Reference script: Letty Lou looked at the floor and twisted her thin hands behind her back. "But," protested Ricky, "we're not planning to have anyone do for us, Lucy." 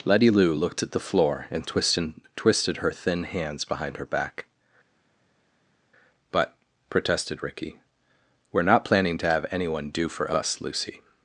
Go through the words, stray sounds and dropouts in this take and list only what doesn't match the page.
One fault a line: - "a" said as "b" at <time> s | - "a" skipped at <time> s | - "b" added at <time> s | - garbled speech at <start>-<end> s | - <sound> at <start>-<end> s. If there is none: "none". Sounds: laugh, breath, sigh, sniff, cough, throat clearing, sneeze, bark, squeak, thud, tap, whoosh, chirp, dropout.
- "twisted" added at 2.3 s